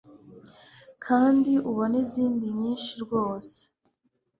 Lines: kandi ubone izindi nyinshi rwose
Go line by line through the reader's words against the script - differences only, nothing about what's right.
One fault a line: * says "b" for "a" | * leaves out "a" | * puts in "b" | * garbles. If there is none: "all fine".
all fine